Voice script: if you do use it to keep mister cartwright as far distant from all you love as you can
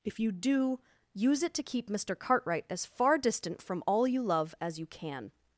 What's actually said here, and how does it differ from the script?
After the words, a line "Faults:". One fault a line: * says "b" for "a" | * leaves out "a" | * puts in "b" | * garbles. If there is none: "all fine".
if you do use it to keep mister cartwright as far distant from all you love as you can
Faults:
all fine